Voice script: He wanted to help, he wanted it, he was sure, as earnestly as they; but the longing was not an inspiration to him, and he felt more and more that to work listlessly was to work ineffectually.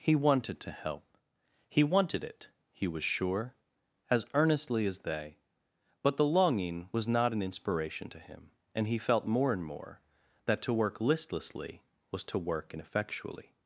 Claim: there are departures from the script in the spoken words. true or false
false